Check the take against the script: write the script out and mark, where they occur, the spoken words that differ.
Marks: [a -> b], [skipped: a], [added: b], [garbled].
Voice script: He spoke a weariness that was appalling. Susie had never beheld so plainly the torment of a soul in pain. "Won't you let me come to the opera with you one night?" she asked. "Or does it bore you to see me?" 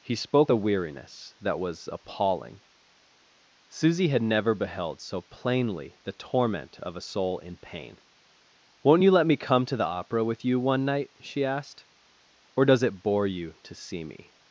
He spoke a weariness that was appalling. Susie had never beheld so plainly the torment of a soul in pain. "Won't you let me come to the opera with you one night?" she asked. "Or does it bore you to see me?"